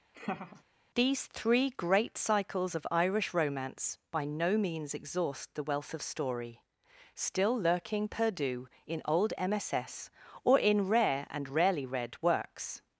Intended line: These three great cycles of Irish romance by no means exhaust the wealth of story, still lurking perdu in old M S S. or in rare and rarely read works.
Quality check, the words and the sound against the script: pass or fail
fail